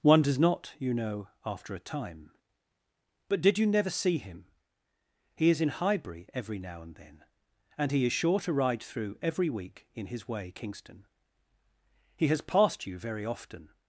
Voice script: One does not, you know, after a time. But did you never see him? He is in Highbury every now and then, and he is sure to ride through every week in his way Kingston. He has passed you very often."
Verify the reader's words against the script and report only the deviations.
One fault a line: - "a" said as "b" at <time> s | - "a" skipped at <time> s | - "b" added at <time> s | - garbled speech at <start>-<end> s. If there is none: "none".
none